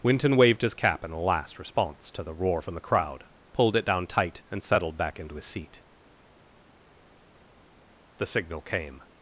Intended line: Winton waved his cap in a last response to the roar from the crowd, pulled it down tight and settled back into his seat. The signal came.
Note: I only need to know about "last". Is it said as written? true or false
true